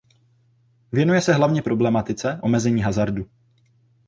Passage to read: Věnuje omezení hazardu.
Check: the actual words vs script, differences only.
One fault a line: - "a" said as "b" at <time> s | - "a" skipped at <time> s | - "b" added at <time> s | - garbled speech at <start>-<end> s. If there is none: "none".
- "se hlavně problematice" added at 1.2 s